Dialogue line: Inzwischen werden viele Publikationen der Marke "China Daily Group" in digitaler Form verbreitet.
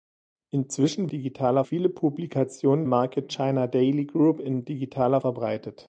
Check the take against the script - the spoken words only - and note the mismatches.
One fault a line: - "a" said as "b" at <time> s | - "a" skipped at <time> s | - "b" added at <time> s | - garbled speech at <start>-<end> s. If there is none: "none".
- "werden" said as "digitaler" at 1.1 s
- "der" skipped at 2.8 s
- "Form" skipped at 5.2 s